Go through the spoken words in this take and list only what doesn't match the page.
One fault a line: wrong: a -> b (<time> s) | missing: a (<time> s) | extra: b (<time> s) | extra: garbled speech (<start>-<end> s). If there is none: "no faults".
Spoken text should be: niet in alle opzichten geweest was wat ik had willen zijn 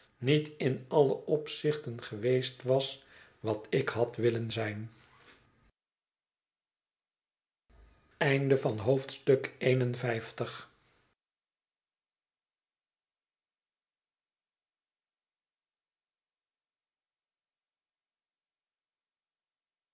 no faults